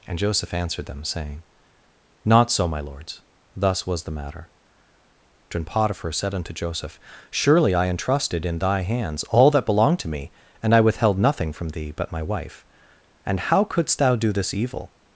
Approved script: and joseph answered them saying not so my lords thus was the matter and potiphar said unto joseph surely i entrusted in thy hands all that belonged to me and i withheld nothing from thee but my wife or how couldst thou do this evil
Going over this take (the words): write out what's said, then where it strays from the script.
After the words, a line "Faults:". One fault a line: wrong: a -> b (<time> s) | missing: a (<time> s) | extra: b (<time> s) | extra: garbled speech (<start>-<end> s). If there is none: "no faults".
and joseph answered them saying not so my lords thus was the matter and potiphar said unto joseph surely i entrusted in thy hands all that belonged to me and i withheld nothing from thee but my wife and how couldst thou do this evil
Faults:
wrong: or -> and (13.2 s)